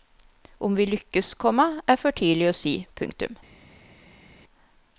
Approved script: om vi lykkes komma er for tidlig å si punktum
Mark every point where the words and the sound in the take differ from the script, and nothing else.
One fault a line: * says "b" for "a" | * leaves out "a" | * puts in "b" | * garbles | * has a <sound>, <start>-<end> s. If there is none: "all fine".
all fine